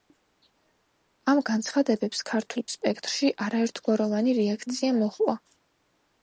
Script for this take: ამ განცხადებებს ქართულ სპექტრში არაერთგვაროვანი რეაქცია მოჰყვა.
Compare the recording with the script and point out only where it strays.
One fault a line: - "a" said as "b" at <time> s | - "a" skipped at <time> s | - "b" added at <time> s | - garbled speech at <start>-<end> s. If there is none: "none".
none